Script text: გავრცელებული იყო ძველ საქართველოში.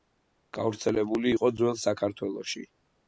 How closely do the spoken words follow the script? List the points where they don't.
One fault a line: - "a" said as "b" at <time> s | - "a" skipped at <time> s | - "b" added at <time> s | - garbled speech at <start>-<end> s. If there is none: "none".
none